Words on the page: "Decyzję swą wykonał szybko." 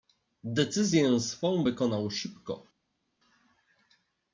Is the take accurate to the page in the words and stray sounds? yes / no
yes